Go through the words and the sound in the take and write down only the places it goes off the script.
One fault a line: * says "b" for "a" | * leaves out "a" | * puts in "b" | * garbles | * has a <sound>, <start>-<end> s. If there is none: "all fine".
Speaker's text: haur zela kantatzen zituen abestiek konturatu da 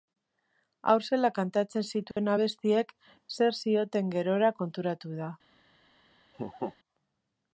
* has a dropout, 2.1-2.2 s
* puts in "zer zioten gerora"
* has a laugh, 6.3-6.8 s